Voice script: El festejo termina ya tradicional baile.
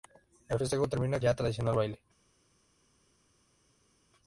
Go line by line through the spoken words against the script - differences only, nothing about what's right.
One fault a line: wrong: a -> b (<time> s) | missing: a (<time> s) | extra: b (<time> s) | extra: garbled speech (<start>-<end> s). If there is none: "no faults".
no faults